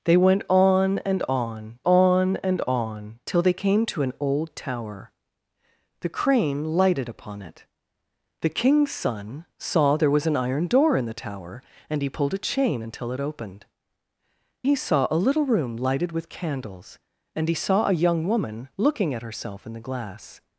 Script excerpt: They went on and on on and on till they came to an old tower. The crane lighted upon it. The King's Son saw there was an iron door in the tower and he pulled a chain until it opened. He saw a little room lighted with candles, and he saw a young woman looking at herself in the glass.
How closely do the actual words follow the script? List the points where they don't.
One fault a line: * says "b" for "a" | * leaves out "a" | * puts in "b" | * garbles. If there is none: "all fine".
all fine